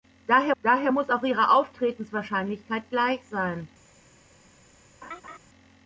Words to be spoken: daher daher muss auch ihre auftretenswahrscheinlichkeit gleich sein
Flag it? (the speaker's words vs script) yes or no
no